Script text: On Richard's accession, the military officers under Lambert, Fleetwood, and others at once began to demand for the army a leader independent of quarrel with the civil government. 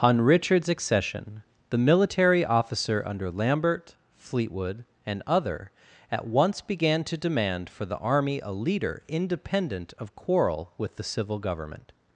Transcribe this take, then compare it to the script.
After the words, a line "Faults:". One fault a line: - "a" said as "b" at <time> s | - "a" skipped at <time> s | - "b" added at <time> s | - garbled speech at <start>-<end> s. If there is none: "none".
On Richard's accession, the military officer under Lambert, Fleetwood, and other at once began to demand for the army a leader independent of quarrel with the civil government.
Faults:
- "officers" said as "officer" at 2.4 s
- "others" said as "other" at 5.3 s